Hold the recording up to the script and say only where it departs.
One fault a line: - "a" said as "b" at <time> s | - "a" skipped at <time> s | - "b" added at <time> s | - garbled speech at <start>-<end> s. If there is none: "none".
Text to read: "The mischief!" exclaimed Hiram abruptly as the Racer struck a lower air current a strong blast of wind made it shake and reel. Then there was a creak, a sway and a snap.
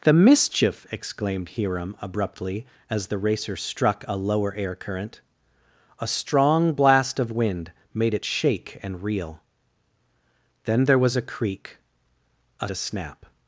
- "sway and" skipped at 12.7 s